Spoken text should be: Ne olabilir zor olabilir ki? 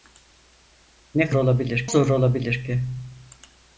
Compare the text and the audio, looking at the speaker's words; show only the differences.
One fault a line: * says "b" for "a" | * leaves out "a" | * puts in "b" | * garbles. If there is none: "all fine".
all fine